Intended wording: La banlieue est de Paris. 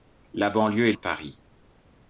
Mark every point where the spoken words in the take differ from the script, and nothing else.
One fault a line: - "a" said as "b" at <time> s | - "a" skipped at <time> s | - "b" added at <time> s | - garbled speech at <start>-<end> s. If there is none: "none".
none